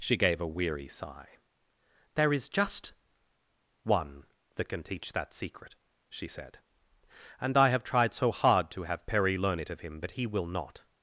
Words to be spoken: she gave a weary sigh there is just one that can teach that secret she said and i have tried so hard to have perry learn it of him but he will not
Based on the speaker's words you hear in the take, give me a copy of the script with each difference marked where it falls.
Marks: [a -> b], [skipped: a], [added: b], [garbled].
she gave a weary sigh there is just one that can teach that secret she said and i have tried so hard to have perry learn it of him but he will not